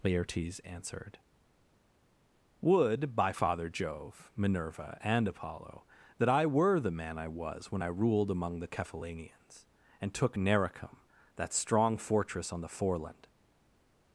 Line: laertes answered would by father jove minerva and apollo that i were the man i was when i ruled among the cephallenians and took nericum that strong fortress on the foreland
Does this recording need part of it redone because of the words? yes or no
no